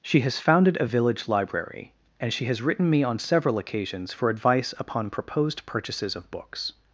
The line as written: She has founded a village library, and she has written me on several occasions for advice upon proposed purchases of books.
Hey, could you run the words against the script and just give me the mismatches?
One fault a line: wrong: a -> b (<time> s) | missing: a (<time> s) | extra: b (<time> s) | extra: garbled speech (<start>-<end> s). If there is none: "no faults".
no faults